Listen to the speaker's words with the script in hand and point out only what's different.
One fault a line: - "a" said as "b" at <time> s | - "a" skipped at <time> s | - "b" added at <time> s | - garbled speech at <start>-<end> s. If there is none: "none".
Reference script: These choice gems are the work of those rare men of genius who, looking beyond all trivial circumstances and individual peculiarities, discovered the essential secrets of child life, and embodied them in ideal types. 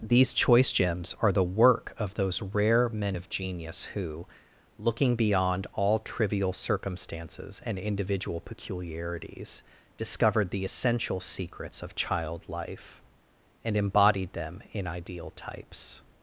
none